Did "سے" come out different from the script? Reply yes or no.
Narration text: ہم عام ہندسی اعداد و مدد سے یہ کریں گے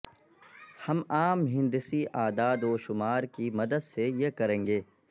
no